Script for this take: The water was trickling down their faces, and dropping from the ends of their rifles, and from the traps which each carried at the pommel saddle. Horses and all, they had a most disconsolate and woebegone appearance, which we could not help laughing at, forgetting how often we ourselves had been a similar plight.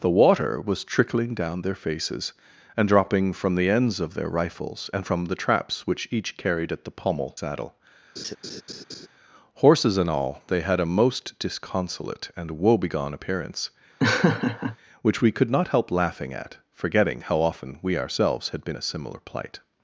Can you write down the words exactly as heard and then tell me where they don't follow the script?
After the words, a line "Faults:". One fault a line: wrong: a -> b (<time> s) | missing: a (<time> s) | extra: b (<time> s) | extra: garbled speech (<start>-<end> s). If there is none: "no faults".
The water was trickling down their faces, and dropping from the ends of their rifles, and from the traps which each carried at the pommel saddle. Horses and all, they had a most disconsolate and woebegone appearance, which we could not help laughing at, forgetting how often we ourselves had been a similar plight.
Faults:
no faults